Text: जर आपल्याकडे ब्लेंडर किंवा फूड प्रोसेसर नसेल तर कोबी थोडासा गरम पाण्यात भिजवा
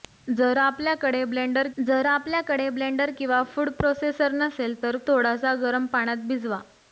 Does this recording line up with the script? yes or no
no